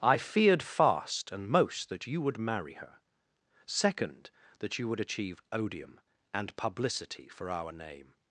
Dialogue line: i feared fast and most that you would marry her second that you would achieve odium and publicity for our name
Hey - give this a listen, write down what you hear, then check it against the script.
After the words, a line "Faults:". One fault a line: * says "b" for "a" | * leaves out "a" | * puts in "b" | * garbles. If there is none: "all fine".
i feared fast and most that you would marry her second that you would achieve odium and publicity for our name
Faults:
all fine